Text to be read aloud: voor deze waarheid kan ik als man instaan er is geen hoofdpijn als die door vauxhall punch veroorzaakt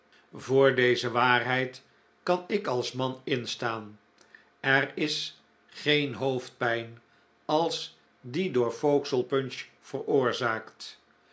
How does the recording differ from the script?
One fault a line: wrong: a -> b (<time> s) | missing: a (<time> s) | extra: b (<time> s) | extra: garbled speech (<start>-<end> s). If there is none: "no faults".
no faults